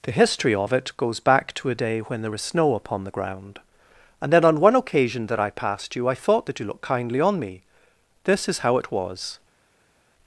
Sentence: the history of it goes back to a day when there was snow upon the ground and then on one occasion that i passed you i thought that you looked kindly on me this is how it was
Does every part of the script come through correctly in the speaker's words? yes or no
yes